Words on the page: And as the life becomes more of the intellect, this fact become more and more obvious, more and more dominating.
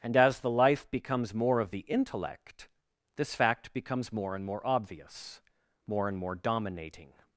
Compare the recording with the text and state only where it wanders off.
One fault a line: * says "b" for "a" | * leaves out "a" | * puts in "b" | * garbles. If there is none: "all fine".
* says "becomes" for "become"